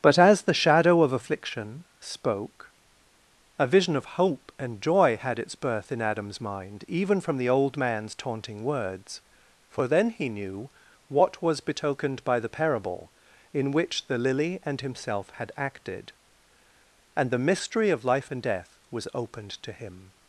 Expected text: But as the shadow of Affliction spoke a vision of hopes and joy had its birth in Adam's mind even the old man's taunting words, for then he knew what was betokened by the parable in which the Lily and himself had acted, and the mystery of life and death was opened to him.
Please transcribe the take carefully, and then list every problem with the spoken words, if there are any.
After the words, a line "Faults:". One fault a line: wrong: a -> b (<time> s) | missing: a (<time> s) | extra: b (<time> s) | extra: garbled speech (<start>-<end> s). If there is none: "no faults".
But as the shadow of Affliction spoke a vision of hope and joy had its birth in Adam's mind even from the old man's taunting words, for then he knew what was betokened by the parable in which the Lily and himself had acted, and the mystery of life and death was opened to him.
Faults:
wrong: hopes -> hope (4.2 s)
extra: from (7.2 s)